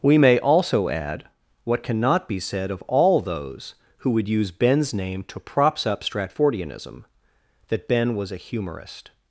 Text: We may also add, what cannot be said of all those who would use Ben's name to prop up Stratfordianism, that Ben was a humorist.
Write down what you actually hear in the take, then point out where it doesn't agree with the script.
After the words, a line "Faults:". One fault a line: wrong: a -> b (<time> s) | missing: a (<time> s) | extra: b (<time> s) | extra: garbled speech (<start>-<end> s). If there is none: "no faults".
We may also add, what cannot be said of all those who would use Ben's name to props up Stratfordianism, that Ben was a humorist.
Faults:
wrong: prop -> props (5.4 s)